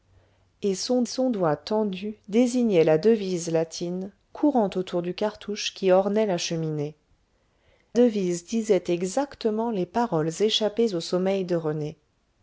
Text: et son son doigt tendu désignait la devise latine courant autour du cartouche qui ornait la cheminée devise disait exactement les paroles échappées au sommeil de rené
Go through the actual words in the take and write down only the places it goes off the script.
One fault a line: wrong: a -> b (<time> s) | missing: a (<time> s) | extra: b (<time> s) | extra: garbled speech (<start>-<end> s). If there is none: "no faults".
no faults